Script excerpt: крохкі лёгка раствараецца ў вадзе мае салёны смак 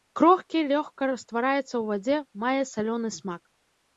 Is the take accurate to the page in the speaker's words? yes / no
yes